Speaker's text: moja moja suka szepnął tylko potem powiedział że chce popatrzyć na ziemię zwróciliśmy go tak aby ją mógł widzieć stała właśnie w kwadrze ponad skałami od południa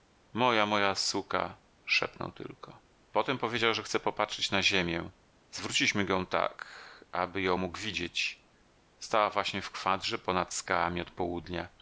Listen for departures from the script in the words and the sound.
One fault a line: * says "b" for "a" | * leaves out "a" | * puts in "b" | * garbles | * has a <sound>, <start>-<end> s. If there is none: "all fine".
all fine